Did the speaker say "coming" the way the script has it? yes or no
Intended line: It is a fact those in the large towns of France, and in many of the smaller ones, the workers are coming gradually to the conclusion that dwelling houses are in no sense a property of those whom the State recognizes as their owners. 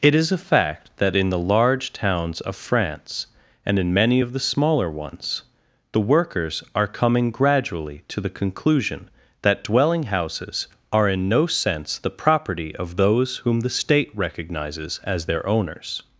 yes